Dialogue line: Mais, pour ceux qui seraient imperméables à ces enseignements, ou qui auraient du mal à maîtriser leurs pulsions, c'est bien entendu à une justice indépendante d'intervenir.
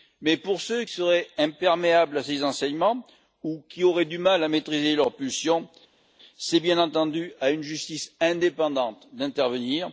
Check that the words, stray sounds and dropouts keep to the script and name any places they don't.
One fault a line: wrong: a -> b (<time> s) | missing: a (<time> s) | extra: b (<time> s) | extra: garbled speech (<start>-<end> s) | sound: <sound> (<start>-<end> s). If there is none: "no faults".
missing: qui (0.8 s)